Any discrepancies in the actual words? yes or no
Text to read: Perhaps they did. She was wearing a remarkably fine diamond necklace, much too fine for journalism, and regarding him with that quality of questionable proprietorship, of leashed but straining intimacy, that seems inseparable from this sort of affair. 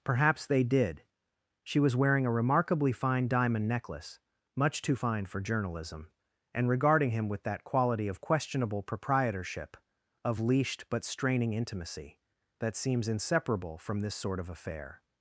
no